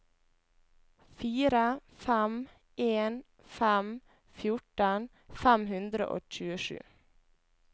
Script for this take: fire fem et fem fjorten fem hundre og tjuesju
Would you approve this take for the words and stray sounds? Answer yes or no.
no